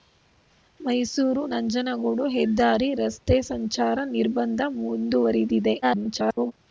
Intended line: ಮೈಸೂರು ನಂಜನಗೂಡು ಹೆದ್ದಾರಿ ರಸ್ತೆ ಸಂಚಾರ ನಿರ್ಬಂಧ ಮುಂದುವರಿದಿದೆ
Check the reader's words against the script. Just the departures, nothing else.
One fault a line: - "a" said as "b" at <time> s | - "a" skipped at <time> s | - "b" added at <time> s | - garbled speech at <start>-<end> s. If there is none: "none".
- garbled speech at 5.8-6.5 s